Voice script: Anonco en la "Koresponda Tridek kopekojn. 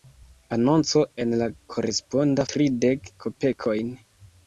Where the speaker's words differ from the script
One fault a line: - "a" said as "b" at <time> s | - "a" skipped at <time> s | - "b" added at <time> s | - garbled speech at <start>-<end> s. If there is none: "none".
none